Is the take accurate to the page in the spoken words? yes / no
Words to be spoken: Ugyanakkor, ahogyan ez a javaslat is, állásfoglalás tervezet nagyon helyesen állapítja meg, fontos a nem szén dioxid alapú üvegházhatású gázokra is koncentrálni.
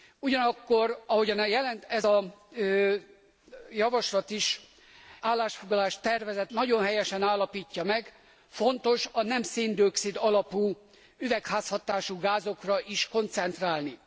yes